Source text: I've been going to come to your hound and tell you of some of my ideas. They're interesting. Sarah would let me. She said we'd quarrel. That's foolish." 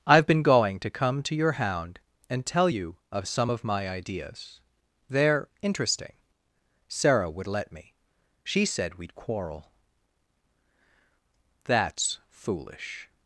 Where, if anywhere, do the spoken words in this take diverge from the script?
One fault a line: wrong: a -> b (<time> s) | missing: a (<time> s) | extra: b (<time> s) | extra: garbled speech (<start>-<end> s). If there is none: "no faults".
no faults